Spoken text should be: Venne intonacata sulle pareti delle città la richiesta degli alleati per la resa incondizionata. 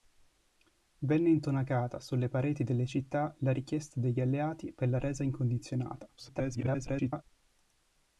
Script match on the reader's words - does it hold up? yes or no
no